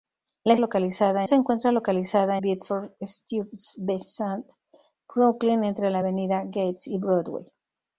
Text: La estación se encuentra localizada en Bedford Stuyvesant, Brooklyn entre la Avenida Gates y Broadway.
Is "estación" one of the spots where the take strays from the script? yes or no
yes